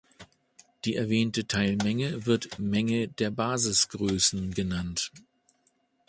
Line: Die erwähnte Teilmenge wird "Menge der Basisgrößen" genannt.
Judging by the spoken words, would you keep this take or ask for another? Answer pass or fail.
pass